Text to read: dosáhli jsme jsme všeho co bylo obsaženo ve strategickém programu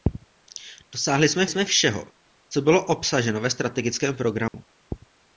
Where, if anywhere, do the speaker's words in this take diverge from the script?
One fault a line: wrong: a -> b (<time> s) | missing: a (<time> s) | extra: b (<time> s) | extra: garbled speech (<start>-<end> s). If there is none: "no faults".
no faults